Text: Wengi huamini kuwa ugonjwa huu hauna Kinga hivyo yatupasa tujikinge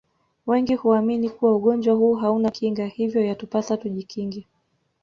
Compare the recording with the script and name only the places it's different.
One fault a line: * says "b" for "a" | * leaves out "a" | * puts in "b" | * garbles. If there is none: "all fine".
all fine